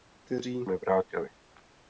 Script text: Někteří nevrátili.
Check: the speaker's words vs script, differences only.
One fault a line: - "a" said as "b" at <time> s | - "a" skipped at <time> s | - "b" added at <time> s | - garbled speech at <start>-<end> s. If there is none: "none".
none